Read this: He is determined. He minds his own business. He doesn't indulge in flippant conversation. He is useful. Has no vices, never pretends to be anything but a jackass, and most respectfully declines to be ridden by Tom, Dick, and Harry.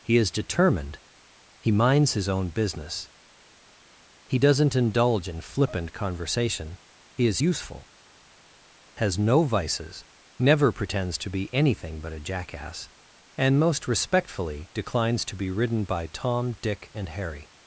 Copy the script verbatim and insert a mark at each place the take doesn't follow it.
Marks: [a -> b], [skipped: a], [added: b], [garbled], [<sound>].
He is determined. He minds his own business. He doesn't indulge in flippant conversation. He is useful. Has no vices, never pretends to be anything but a jackass, and most respectfully declines to be ridden by Tom, Dick, and Harry.